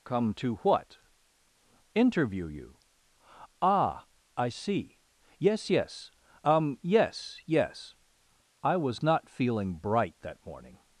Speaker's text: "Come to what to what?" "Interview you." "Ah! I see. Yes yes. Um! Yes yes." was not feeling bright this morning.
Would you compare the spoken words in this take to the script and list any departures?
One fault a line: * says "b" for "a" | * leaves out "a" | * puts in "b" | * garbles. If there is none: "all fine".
* leaves out "to what"
* puts in "I"
* says "that" for "this"